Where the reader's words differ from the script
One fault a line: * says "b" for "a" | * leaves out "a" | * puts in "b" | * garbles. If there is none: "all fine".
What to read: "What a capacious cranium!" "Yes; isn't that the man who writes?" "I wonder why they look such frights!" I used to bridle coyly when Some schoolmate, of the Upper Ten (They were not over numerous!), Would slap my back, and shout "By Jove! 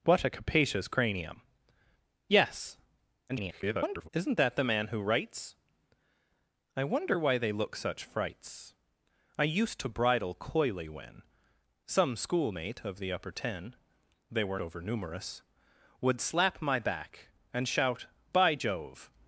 * garbles
* leaves out "not"